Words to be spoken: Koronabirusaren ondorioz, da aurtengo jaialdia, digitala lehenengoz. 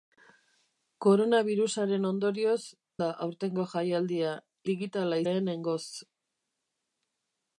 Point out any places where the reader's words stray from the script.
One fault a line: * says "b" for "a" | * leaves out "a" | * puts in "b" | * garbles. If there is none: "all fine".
all fine